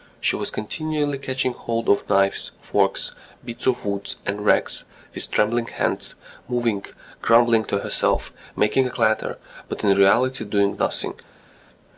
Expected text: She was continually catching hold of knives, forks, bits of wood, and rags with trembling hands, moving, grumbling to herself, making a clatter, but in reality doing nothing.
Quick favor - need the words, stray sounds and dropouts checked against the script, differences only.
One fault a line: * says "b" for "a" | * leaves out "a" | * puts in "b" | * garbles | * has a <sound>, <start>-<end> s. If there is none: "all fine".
all fine